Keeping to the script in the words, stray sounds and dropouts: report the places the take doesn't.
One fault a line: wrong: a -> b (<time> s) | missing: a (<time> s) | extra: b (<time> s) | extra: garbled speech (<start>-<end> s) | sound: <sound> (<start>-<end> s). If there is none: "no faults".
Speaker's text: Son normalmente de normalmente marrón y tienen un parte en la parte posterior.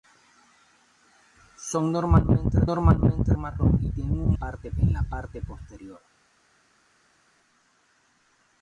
no faults